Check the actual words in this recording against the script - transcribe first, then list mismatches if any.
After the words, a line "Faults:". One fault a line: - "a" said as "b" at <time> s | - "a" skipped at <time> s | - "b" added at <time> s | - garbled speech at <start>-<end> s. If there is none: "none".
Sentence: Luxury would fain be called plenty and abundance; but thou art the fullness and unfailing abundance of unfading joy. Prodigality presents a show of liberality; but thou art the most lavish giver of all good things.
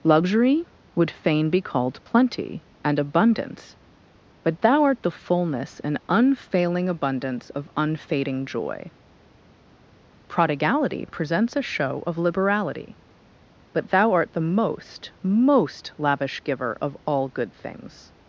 Luxury would fain be called plenty and abundance; but thou art the fullness and unfailing abundance of unfading joy. Prodigality presents a show of liberality; but thou art the most most lavish giver of all good things.
Faults:
- "most" added at 15.2 s